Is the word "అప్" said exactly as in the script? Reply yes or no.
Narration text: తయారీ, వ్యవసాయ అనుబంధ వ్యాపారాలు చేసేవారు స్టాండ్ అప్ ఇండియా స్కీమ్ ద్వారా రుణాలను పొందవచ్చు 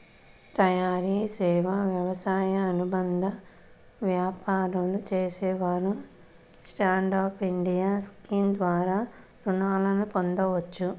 yes